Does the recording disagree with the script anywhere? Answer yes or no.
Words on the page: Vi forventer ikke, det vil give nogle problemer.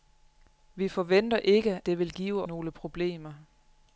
no